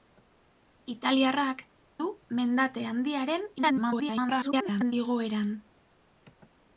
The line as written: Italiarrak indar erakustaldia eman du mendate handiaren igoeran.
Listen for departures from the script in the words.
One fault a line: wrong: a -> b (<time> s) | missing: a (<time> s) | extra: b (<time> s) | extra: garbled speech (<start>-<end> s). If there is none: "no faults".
missing: indar erakustaldia eman (1.6 s)
extra: garbled speech (3.6-4.9 s)